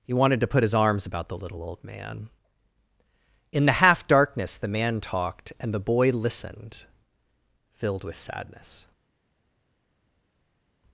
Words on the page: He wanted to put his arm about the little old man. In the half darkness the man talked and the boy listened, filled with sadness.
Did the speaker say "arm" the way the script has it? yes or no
no